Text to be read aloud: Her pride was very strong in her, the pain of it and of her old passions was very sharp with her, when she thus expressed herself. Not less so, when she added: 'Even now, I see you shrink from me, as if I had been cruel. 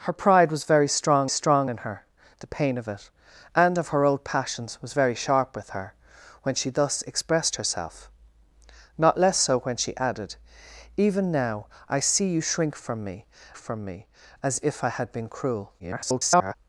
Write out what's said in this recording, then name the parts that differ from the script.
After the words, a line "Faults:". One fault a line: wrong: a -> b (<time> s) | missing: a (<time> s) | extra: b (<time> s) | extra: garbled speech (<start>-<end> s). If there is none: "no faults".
Her pride was very strong strong in her, the pain of it and of her old passions was very sharp with her, when she thus expressed herself. Not less so, when she added: 'Even now, I see you shrink from me from me, as if I had been cruel. [garbled]
Faults:
extra: strong (1.3 s)
extra: from me (13.6 s)
extra: garbled speech (15.8-16.5 s)